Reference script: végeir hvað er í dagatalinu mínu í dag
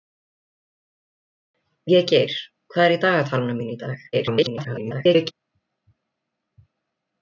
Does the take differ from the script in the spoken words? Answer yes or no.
yes